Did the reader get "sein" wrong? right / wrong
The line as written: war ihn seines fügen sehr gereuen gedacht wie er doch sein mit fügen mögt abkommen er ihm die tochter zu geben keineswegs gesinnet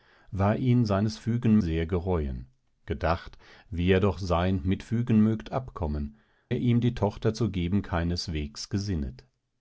right